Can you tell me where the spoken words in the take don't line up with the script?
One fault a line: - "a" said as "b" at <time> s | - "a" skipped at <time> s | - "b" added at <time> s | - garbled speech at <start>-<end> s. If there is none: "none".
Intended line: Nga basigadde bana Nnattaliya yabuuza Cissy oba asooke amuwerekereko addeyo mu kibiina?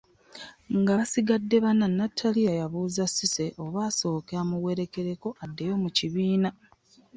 none